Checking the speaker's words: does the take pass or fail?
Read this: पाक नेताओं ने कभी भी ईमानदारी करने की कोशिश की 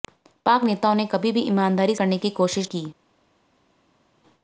pass